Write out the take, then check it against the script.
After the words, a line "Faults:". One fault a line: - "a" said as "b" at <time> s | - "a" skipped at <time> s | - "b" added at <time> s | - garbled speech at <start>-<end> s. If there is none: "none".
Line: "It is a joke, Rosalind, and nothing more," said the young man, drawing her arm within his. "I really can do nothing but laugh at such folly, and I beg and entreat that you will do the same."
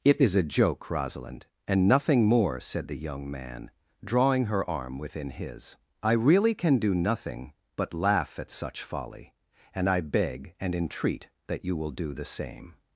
"It is a joke, Rosalind, and nothing more," said the young man, drawing her arm within his. "I really can do nothing but laugh at such folly, and I beg and entreat that you will do the same."
Faults:
none